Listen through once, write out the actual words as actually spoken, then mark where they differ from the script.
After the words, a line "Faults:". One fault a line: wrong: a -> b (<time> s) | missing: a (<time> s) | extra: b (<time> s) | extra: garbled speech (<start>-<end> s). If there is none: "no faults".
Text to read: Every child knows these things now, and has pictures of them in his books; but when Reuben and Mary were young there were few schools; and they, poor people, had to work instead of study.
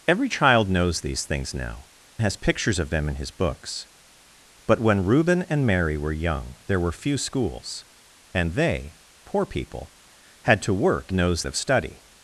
Every child knows these things now, has pictures of them in his books; but when Reuben and Mary were young there were few schools; and they, poor people, had to work knows of study.
Faults:
missing: and (1.9 s)
wrong: instead -> knows (11.1 s)